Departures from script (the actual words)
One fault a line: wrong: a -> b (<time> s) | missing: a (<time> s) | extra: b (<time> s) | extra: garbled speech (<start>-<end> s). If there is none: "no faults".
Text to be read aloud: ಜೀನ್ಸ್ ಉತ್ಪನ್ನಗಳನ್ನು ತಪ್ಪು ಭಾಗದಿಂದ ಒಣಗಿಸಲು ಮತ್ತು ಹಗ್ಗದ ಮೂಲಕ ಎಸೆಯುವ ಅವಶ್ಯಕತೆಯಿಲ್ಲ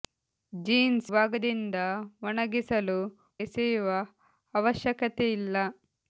missing: ಉತ್ಪನ್ನಗಳನ್ನು ತಪ್ಪು (1.1 s)
missing: ಮತ್ತು ಹಗ್ಗದ ಮೂಲಕ (3.0 s)